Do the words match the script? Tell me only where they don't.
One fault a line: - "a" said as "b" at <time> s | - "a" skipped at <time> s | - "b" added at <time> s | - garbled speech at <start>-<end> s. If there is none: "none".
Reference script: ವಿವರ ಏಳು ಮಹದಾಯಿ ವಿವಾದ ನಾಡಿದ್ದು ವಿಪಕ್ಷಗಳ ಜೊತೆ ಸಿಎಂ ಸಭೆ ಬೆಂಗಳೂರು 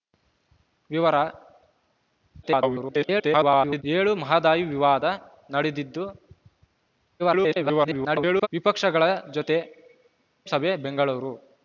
- garbled speech at 2.4-3.8 s
- garbled speech at 7.2-8.5 s
- "ಸಿಎಂ" skipped at 9.6 s